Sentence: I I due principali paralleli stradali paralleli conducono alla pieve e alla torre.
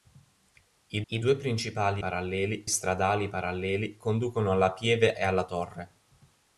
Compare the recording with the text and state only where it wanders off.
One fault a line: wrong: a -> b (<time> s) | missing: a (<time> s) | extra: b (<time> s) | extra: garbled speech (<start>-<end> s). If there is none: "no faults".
no faults